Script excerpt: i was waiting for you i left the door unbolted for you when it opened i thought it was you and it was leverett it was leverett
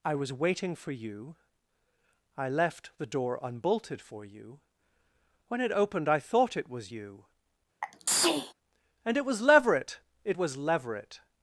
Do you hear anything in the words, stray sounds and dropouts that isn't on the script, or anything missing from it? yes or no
yes